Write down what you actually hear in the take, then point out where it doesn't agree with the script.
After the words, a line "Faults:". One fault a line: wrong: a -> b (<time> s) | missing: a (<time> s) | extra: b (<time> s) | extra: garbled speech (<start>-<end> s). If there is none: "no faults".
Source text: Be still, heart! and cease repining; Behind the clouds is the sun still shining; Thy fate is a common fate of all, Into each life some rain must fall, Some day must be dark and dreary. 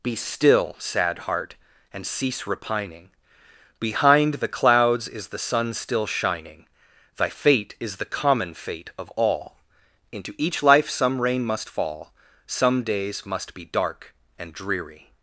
Be still, sad heart! and cease repining; Behind the clouds is the sun still shining; Thy fate is the common fate of all, Into each life some rain must fall, Some days must be dark and dreary.
Faults:
extra: sad (0.8 s)
wrong: a -> the (8.0 s)
wrong: day -> days (12.8 s)